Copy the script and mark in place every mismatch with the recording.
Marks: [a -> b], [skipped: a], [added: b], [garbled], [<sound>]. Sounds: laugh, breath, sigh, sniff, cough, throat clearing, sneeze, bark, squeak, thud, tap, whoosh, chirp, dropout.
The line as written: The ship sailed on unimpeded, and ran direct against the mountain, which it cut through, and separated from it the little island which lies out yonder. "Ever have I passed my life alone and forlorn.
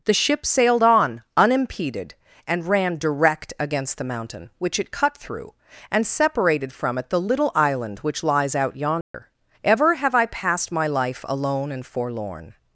The ship sailed on unimpeded, and ran direct against the mountain, which it cut through, and separated from it the little island which lies out yonder. [dropout] "Ever have I passed my life alone and forlorn.